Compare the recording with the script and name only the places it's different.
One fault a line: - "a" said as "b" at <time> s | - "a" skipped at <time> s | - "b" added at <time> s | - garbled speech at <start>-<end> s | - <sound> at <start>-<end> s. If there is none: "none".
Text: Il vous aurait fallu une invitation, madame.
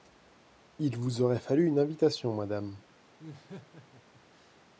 - laugh at 3.2-4.6 s